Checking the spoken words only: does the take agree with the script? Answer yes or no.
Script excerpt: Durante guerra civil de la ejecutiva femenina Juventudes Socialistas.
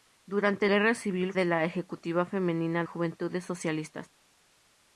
yes